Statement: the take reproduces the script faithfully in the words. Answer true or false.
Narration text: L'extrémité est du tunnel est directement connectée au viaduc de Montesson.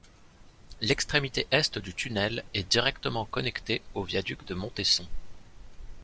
true